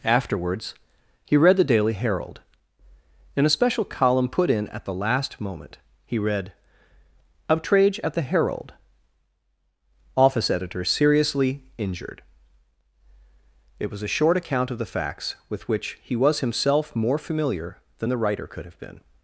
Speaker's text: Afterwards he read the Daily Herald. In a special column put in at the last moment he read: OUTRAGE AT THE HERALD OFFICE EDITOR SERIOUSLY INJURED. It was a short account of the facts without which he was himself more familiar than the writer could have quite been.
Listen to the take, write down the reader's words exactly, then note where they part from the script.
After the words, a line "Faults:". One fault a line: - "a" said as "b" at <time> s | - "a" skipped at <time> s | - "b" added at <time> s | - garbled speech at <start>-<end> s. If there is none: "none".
Afterwards he read the Daily Herald. In a special column put in at the last moment he read: OUTRAGE AT THE HERALD OFFICE EDITOR SERIOUSLY INJURED. It was a short account of the facts with which he was himself more familiar than the writer could have been.
Faults:
- "without" said as "with" at 15.5 s
- "quite" skipped at 18.8 s